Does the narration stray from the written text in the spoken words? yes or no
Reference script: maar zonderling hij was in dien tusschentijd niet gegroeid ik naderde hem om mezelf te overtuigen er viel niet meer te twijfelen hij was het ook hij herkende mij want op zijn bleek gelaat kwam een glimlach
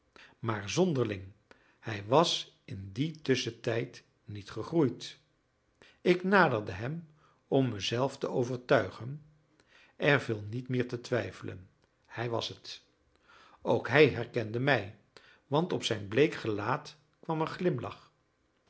no